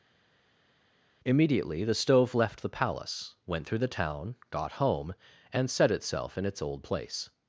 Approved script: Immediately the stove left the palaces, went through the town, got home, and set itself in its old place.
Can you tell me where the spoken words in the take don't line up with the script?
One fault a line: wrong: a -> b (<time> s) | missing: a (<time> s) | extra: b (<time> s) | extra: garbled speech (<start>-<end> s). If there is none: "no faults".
wrong: palaces -> palace (2.7 s)